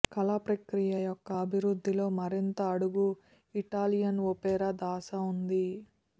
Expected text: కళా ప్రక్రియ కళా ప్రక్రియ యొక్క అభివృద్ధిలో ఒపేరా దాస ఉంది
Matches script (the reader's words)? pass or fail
fail